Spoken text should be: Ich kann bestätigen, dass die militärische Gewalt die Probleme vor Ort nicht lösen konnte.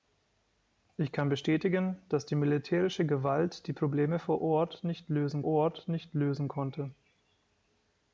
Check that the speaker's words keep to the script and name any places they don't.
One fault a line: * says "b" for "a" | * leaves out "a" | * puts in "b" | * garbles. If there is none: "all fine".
* puts in "Ort nicht lösen"